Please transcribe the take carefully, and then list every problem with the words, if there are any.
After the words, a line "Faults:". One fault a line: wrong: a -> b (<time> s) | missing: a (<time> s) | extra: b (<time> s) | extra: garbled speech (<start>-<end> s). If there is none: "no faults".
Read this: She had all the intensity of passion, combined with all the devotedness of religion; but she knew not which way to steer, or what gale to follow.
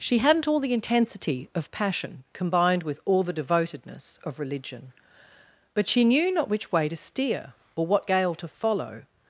She hadn't all the intensity of passion, combined with all the devotedness of religion; but she knew not which way to steer, or what gale to follow.
Faults:
wrong: had -> hadn't (0.2 s)